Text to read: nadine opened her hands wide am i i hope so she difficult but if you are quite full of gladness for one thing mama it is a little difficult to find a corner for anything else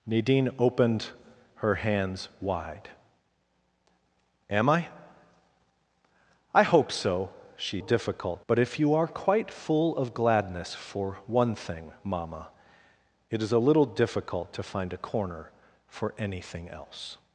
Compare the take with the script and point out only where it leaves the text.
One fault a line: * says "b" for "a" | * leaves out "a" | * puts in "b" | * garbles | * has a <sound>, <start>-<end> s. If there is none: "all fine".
all fine